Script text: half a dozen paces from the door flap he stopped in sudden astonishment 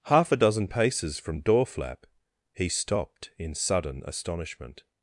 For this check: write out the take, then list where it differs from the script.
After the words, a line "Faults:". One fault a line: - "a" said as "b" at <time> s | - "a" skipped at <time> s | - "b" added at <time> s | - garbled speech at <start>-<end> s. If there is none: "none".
half a dozen paces from door flap he stopped in sudden astonishment
Faults:
- "the" skipped at 1.4 s